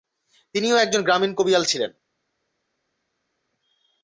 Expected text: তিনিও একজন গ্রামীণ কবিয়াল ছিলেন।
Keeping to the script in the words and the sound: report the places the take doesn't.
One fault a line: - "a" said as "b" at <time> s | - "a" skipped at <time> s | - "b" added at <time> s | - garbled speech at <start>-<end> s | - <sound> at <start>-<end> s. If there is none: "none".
none